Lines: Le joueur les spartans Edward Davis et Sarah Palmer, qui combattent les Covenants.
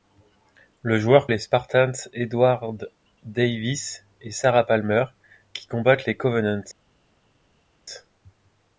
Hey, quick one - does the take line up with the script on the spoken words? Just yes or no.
yes